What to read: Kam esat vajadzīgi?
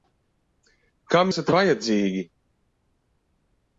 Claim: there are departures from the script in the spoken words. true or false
false